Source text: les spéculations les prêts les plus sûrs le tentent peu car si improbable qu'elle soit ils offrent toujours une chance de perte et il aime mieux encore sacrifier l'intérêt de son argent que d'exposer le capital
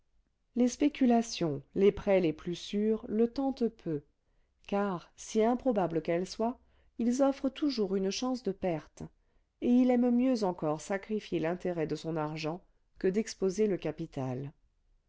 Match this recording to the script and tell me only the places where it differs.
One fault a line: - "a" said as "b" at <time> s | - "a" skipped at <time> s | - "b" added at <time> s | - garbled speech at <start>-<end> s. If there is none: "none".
none